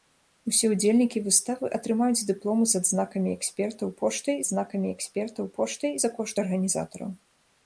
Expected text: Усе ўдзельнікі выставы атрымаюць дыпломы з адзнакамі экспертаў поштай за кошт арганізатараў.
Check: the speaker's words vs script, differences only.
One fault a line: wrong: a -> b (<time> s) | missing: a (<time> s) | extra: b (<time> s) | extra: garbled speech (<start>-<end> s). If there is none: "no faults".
extra: адзнакамі экспертаў поштай (4.4 s)